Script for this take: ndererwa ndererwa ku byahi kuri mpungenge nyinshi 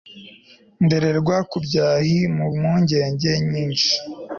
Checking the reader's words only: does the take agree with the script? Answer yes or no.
no